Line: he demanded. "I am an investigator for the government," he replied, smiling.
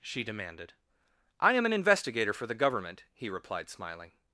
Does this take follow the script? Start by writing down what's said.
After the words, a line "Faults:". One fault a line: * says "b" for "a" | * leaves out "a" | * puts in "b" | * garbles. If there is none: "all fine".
she demanded. "I am an investigator for the government," he replied, smiling.
Faults:
* says "she" for "he"